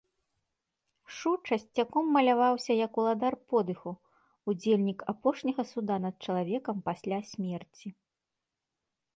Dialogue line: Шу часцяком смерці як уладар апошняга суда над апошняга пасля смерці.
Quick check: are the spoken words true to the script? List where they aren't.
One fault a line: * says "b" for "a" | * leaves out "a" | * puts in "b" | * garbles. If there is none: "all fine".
* says "маляваўся" for "смерці"
* puts in "подыху удзельнік"
* says "чалавекам" for "апошняга"